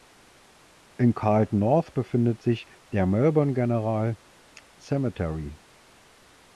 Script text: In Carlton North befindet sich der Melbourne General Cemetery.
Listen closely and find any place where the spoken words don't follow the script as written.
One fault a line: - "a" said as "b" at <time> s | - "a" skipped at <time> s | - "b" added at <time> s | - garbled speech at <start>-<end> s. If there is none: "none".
none